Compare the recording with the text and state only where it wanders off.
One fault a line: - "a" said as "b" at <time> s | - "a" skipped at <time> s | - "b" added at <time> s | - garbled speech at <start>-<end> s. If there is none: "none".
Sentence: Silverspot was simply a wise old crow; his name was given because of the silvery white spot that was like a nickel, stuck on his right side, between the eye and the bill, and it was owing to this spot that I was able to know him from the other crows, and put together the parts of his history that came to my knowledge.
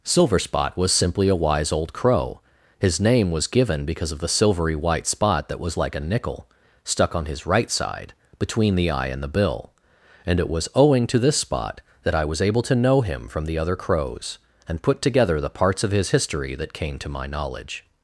none